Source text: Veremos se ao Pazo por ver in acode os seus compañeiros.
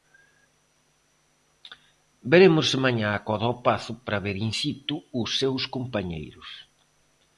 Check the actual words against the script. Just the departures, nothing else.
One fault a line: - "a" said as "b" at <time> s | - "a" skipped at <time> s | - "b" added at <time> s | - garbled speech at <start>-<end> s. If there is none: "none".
- "mañá acode" added at 2.9 s
- "por" said as "para" at 4.0 s
- "acode" said as "situ" at 4.6 s